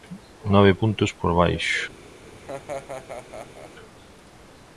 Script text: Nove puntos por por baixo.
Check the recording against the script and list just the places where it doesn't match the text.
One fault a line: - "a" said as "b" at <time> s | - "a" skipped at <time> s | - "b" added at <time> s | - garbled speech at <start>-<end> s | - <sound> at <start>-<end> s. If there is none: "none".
- "por" skipped at 1.3 s
- laugh at 2.3-3.7 s